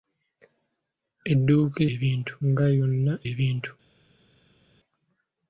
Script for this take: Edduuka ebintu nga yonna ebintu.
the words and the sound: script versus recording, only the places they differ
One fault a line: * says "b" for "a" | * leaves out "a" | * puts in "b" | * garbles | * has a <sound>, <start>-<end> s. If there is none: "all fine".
all fine